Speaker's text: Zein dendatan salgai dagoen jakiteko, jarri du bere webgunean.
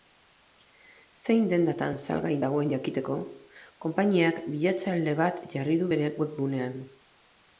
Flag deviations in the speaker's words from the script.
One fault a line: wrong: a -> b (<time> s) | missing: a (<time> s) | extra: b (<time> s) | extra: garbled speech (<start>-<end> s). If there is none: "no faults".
extra: konpainiak bilatzaile bat (3.9 s)